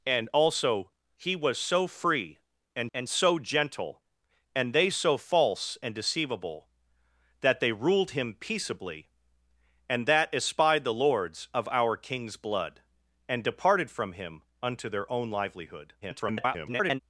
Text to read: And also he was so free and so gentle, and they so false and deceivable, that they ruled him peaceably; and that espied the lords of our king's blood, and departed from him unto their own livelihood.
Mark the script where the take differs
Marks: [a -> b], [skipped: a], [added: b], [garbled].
And also he was so free and [added: and] so gentle, and they so false and deceivable, that they ruled him peaceably; and that espied the lords of our king's blood, and departed from him unto their own livelihood. [garbled]